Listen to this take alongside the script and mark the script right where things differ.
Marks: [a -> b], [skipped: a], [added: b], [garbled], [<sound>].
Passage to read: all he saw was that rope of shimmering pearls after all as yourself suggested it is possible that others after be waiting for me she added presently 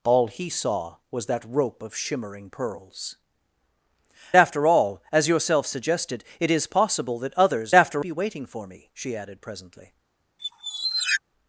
all he saw was that rope of shimmering pearls after all as yourself suggested it is possible that others after be waiting for me she added presently [squeak]